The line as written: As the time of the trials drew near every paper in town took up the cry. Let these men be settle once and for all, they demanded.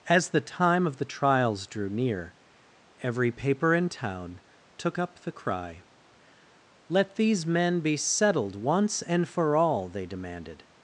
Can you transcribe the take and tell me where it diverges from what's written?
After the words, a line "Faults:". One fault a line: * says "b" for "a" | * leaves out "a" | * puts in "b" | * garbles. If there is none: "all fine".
As the time of the trials drew near every paper in town took up the cry. Let these men be settled once and for all, they demanded.
Faults:
* says "settled" for "settle"